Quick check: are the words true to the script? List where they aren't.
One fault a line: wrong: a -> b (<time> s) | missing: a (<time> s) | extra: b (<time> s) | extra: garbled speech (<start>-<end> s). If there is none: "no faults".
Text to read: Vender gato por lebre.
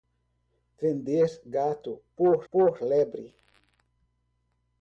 extra: por (2.5 s)